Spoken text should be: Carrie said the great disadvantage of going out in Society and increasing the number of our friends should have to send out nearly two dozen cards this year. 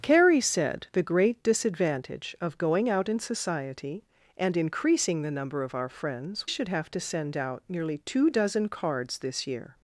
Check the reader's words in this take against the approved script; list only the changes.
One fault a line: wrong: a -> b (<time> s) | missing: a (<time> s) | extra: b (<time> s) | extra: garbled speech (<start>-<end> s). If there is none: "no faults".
no faults